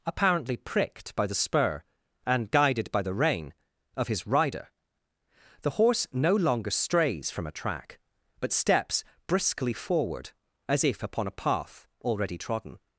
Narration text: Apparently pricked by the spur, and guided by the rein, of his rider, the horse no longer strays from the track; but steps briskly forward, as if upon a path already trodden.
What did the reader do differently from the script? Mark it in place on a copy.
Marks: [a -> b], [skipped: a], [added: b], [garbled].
Apparently pricked by the spur, and guided by the rein, of his rider, the horse no longer strays from [the -> a] track; but steps briskly forward, as if upon a path already trodden.